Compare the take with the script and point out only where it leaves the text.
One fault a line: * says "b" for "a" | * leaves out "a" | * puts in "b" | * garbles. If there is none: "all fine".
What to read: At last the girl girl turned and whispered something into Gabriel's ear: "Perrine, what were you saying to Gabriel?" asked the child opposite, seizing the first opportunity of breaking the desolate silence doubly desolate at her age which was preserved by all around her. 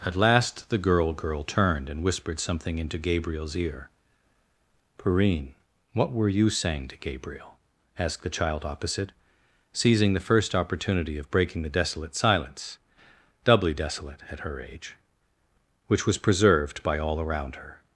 all fine